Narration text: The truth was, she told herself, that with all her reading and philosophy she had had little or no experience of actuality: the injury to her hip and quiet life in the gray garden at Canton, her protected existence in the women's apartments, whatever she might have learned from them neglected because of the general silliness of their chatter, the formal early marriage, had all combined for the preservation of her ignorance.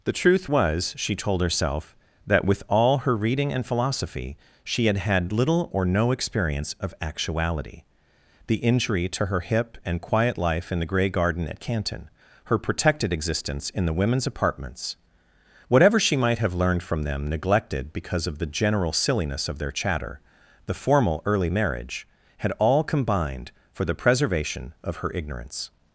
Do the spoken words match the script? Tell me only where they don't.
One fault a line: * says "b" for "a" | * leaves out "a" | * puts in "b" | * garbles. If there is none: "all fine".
all fine